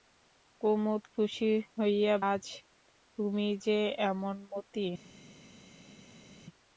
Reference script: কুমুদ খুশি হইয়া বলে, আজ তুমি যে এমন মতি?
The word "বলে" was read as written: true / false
false